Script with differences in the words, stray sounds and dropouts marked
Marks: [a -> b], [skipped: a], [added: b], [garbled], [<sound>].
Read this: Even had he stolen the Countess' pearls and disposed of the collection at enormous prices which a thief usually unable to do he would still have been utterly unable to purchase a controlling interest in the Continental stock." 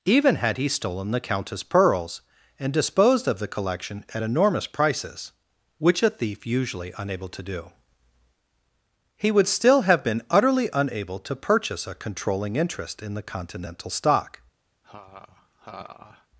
Even had he stolen the Countess' pearls and disposed of the collection at enormous prices which a thief usually unable to do he would still have been utterly unable to purchase a controlling interest in the Continental stock." [laugh]